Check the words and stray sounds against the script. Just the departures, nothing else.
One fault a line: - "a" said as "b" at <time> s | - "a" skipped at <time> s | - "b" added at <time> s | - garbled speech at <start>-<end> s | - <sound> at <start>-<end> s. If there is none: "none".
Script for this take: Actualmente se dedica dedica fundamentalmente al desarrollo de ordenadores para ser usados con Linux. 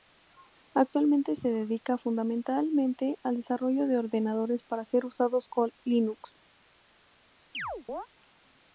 - "dedica" skipped at 2.0 s
- chirp at 7.5-8.1 s